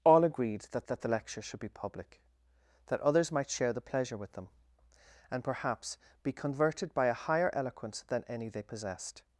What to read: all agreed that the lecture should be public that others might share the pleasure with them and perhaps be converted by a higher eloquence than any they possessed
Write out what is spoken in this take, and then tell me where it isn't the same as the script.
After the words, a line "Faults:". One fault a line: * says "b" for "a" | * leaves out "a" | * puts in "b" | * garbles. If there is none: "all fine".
all agreed that that the lecture should be public that others might share the pleasure with them and perhaps be converted by a higher eloquence than any they possessed
Faults:
* puts in "that"